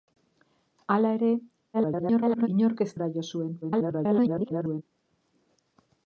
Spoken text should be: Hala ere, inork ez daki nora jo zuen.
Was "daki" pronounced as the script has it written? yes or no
no